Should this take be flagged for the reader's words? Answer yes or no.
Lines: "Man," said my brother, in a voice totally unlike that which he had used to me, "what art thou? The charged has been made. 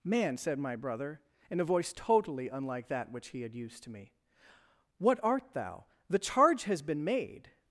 yes